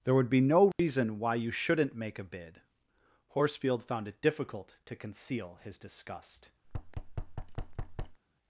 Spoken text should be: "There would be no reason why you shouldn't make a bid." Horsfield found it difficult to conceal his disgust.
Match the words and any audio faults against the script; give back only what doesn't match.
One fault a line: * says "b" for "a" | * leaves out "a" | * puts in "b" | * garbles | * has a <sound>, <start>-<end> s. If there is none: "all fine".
* has a dropout, 0.7-0.8 s
* has a thud, 6.6-8.2 s